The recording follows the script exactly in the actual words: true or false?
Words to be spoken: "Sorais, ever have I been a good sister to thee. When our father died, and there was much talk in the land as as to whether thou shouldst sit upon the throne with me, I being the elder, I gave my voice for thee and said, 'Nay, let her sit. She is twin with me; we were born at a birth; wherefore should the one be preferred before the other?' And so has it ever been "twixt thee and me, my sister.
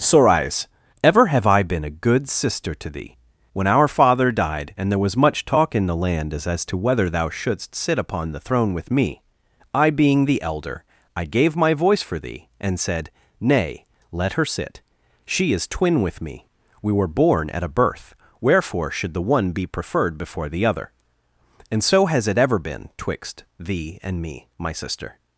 true